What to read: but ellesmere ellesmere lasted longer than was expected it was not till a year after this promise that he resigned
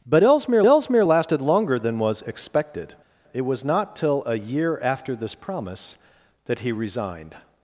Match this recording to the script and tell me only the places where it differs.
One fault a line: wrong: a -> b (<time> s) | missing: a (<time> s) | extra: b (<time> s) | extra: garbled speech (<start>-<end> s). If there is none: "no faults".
no faults